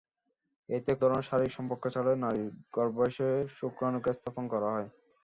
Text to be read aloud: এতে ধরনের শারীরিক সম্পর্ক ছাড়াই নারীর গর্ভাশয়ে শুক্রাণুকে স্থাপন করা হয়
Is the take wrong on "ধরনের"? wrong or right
right